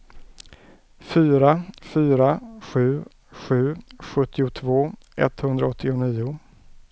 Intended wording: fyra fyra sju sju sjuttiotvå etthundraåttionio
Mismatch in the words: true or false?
false